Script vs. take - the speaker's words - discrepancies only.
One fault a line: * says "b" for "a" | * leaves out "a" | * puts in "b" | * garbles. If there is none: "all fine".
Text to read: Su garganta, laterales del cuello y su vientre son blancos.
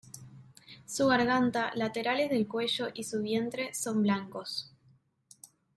all fine